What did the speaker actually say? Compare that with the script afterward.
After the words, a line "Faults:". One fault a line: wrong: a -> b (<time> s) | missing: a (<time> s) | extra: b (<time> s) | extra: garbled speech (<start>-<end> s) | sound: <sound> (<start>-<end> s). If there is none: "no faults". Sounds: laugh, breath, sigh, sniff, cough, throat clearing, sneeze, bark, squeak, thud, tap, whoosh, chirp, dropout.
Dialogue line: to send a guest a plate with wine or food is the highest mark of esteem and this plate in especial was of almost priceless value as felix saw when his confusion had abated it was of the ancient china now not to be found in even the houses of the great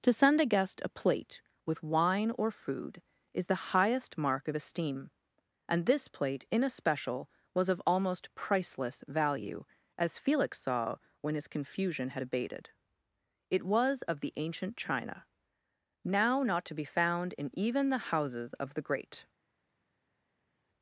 to send a guest a plate with wine or food is the highest mark of esteem and this plate in especial was of almost priceless value as felix saw when his confusion had abated it was of the ancient china now not to be found in even the houses of the great
Faults:
no faults